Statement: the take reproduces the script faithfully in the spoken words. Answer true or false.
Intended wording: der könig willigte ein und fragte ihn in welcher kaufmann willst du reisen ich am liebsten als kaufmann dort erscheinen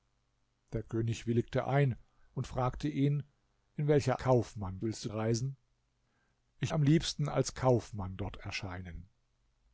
true